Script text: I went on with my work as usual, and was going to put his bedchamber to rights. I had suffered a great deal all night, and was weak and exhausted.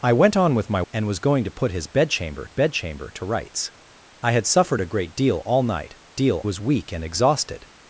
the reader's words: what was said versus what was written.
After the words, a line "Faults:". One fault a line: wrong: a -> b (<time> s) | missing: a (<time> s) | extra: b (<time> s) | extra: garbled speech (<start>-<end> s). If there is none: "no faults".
I went on with my and was going to put his bedchamber bedchamber to rights. I had suffered a great deal all night, deal was weak and exhausted.
Faults:
missing: work as usual (0.8 s)
extra: bedchamber (2.5 s)
wrong: and -> deal (6.1 s)